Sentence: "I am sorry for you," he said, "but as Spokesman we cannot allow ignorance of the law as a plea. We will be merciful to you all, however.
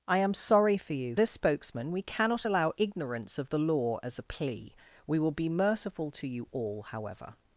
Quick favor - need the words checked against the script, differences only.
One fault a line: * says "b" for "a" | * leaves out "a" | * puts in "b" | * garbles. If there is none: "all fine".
* leaves out "he said but"